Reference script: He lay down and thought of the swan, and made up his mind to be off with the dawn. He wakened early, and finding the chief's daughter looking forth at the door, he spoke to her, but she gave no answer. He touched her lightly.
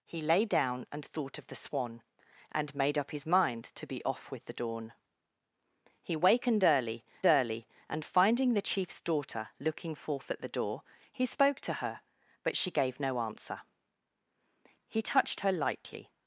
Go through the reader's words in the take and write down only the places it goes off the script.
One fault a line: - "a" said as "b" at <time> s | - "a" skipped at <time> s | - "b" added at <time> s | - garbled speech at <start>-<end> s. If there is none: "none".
- "early" added at 7.3 s